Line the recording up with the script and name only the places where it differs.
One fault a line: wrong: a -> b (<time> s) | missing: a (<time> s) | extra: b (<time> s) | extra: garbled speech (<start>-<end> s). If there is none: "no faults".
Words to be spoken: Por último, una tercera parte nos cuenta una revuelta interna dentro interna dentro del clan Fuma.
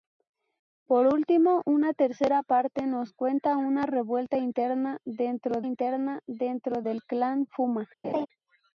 no faults